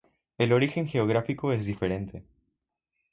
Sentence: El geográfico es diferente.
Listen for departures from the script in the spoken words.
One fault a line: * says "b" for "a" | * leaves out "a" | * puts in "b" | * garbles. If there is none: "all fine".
* puts in "origen"